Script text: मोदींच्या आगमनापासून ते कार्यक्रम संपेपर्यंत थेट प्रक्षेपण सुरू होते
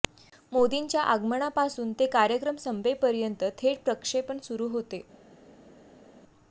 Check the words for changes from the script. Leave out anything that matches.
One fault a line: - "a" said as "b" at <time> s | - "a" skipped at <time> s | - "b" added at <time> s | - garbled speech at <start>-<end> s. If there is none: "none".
none